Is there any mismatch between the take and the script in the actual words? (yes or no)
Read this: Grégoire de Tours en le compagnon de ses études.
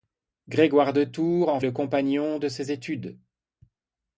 no